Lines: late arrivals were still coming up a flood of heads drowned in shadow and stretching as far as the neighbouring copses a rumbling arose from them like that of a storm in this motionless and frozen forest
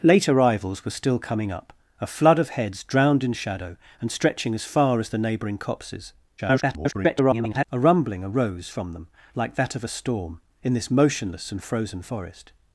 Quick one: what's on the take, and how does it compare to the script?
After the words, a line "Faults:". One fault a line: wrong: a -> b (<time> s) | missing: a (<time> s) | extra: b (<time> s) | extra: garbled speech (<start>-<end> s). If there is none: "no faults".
late arrivals were still coming up a flood of heads drowned in shadow and stretching as far as the neighbouring copses [garbled] a rumbling arose from them like that of a storm in this motionless and frozen forest
Faults:
extra: garbled speech (6.4-7.7 s)